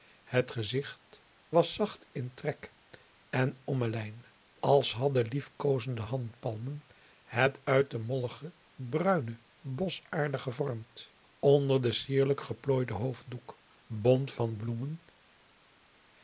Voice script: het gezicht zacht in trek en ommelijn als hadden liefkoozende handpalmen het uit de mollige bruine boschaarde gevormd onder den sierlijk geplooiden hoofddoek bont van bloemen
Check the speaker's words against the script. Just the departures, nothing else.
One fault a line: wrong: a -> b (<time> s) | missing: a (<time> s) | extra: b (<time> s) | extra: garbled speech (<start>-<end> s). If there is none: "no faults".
extra: was (1.5 s)